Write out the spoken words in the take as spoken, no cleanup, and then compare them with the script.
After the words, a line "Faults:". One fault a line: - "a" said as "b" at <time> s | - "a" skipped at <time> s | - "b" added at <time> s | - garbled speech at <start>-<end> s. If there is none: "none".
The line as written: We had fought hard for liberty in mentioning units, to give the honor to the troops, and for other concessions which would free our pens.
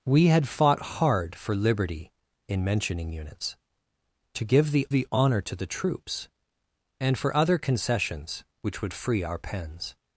We had fought hard for liberty in mentioning units, to give the the honor to the troops, and for other concessions which would free our pens.
Faults:
- "the" added at 4.9 s